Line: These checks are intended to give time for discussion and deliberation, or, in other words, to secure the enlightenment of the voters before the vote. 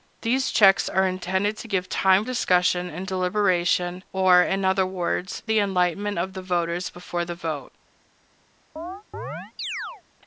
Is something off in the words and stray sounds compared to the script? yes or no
yes